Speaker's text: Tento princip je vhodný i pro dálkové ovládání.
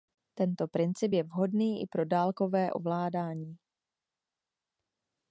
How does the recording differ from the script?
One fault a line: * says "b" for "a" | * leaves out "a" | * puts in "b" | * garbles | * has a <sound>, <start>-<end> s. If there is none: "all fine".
all fine